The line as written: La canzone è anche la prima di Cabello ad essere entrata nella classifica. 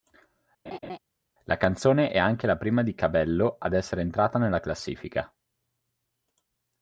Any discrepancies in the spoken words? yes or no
no